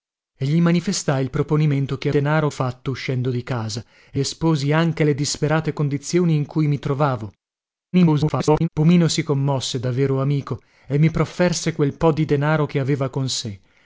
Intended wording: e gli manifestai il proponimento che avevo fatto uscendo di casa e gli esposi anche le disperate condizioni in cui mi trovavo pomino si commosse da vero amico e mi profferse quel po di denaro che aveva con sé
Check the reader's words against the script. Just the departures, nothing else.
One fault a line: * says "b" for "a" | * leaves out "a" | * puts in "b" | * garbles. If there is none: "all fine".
* says "denaro" for "avevo"
* leaves out "gli"
* garbles